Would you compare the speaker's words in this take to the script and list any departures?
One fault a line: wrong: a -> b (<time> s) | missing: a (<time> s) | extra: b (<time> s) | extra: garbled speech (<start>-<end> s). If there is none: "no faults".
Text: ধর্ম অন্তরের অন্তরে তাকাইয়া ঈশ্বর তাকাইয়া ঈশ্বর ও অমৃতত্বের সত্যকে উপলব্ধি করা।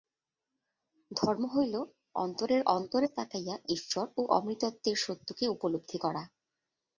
extra: হইল (1.6 s)
missing: তাকাইয়া ঈশ্বর (4.1 s)